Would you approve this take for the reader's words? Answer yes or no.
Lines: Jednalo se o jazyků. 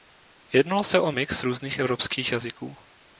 no